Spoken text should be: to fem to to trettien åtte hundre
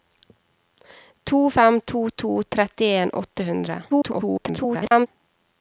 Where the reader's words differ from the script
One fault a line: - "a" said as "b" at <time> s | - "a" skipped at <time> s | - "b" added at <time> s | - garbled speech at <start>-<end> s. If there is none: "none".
- garbled speech at 3.9-5.1 s